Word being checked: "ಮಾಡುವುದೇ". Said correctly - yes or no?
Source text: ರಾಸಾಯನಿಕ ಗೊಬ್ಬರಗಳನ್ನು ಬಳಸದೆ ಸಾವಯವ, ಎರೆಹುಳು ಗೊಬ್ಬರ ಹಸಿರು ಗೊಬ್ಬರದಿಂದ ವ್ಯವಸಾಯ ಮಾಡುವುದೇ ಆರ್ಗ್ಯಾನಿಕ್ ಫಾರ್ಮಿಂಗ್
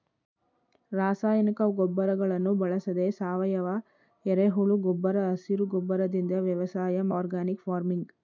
no